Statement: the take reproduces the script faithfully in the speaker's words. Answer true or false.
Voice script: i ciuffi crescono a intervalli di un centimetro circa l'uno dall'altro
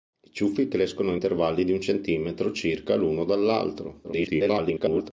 false